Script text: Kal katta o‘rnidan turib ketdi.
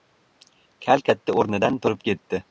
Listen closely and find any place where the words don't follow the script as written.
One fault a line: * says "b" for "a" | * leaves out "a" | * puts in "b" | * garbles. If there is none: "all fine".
all fine